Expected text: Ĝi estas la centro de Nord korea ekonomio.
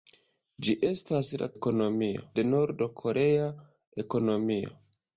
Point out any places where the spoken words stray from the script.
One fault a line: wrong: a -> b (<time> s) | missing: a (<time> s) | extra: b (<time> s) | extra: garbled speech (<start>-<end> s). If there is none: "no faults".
wrong: centro -> ekonomio (1.6 s)